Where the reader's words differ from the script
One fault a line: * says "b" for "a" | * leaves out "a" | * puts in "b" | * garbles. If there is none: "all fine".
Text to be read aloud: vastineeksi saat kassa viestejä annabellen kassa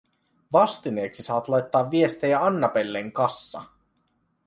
* says "laittaa" for "kassa"